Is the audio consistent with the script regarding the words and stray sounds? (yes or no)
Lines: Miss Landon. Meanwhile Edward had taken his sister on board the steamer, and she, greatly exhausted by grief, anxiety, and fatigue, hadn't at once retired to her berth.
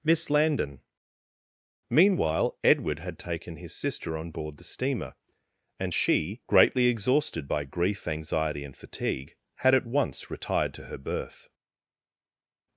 no